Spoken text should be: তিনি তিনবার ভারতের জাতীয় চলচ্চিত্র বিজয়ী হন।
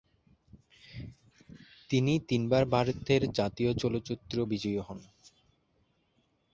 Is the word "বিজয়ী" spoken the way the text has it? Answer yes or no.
yes